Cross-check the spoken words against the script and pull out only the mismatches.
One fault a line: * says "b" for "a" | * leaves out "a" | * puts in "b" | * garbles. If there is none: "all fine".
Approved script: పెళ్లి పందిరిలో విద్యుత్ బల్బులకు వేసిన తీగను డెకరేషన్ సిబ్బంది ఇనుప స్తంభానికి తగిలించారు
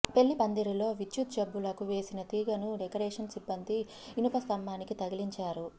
all fine